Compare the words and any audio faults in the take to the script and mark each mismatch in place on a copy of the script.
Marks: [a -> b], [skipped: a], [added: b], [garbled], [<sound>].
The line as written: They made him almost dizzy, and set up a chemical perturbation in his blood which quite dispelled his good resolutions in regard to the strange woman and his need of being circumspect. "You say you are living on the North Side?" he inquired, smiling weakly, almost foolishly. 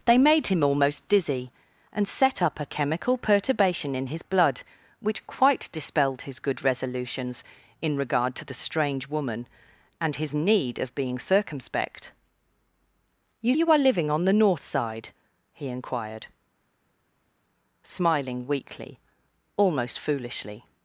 They made him almost dizzy, and set up a chemical perturbation in his blood which quite dispelled his good resolutions in regard to the strange woman and his need of being circumspect. "You [skipped: say] you are living on the North Side?" he inquired, smiling weakly, almost foolishly.